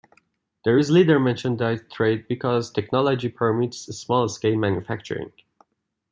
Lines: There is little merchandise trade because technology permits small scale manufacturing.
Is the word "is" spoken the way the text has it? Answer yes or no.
yes